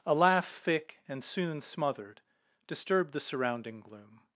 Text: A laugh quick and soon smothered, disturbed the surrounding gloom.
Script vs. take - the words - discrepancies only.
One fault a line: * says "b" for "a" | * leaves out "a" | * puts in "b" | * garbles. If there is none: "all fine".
* says "thick" for "quick"